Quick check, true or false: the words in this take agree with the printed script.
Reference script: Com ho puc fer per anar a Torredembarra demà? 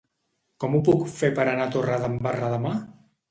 true